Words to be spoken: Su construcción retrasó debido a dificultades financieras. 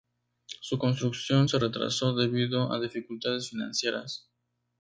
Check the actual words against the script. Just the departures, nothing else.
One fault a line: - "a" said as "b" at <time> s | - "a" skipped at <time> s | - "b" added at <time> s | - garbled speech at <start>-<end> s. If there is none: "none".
- "se" added at 1.5 s